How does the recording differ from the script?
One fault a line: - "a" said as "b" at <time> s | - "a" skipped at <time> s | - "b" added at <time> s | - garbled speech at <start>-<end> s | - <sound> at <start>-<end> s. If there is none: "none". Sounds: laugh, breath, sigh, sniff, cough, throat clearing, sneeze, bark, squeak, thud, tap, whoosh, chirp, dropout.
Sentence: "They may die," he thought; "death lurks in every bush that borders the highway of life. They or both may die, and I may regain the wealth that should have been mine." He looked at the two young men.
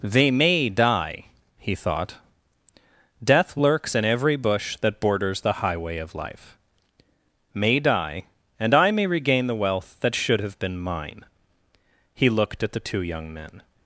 - "They or both" skipped at 6.6 s